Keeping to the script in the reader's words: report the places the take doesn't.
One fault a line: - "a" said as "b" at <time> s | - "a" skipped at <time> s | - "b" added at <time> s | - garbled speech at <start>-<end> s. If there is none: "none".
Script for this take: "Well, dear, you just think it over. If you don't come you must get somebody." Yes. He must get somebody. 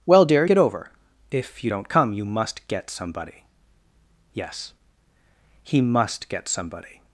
- "you just think" skipped at 0.5 s